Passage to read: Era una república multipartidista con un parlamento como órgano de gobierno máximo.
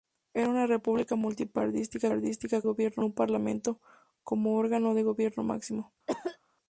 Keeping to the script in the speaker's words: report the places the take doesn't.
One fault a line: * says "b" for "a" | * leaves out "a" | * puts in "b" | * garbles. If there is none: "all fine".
* says "gobierno" for "con"